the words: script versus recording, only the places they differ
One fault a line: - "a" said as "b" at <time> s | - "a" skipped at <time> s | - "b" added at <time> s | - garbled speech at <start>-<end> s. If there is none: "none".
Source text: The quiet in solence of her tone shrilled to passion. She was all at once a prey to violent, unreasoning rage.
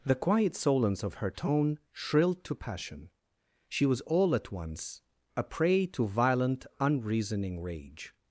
- "in" skipped at 0.5 s